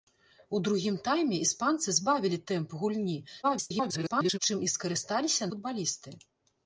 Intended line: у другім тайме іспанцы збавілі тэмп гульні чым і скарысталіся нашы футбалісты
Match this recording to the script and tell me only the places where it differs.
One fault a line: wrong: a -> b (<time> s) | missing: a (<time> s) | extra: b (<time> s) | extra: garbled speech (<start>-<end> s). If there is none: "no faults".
extra: garbled speech (3.4-4.4 s)
missing: нашы (5.5 s)